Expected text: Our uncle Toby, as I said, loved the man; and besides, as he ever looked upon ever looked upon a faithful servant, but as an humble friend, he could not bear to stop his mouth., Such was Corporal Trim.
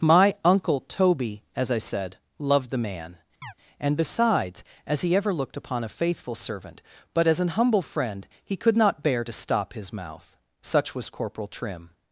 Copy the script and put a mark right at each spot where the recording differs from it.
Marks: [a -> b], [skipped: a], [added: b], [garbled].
[Our -> My] uncle Toby, as I said, loved the man; and besides, as he ever looked upon [skipped: ever looked upon] a faithful servant, but as an humble friend, he could not bear to stop his mouth., Such was Corporal Trim.